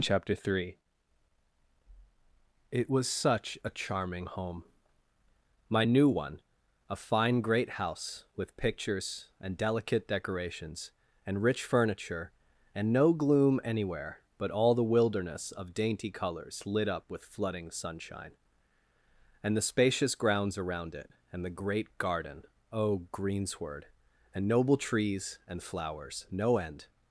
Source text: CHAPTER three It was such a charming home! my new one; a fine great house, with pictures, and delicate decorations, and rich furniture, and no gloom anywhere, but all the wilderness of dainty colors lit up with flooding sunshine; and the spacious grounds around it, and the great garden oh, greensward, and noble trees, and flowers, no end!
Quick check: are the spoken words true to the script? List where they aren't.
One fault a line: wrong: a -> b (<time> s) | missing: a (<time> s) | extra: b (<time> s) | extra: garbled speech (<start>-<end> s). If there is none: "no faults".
no faults